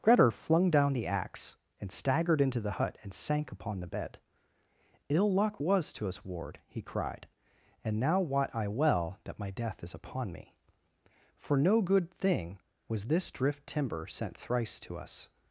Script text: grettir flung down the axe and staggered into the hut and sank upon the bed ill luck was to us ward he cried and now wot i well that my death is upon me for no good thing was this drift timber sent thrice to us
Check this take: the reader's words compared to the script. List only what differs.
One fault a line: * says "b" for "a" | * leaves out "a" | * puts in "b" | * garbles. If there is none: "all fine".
all fine